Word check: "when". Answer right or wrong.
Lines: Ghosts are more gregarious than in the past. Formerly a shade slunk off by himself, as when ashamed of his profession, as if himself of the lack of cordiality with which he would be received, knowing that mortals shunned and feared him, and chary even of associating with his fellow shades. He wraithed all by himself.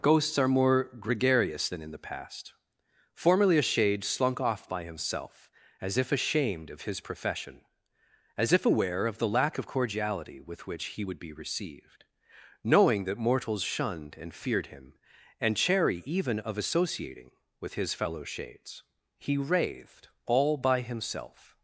wrong